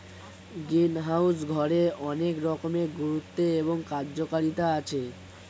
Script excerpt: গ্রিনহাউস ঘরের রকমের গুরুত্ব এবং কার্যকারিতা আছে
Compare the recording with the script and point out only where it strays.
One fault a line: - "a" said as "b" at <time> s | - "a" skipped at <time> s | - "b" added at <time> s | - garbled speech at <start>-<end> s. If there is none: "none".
- "অনেক" added at 2.0 s